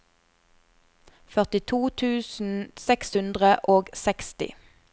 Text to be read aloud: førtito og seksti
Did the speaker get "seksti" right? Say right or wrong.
right